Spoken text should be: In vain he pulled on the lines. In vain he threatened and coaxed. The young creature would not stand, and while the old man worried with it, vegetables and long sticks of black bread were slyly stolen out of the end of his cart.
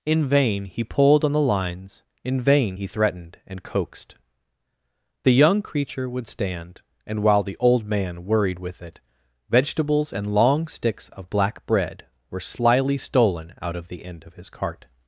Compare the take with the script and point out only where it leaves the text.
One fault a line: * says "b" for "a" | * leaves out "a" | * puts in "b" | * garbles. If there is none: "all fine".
* leaves out "not"